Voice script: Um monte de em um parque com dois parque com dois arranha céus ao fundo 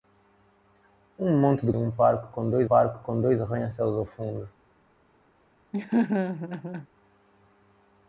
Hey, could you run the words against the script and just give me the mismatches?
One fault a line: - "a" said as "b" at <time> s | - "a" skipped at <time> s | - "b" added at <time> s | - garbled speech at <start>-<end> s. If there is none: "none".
none